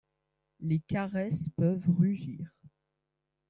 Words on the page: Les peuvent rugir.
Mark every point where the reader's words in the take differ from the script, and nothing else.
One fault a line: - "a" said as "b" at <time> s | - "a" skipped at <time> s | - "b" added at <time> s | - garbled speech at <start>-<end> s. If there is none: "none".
- "caresses" added at 0.8 s